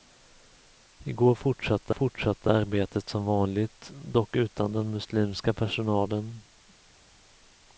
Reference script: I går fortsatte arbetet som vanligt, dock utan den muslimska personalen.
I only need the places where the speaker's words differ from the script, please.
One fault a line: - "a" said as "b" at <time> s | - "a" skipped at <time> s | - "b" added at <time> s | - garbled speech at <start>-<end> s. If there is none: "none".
- "fortsatte" added at 1.9 s